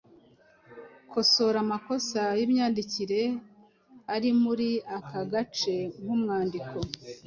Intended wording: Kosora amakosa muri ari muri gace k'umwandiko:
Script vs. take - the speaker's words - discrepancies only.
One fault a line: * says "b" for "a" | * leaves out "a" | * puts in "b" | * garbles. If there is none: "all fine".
* says "y'imyandikire" for "muri"
* puts in "aka"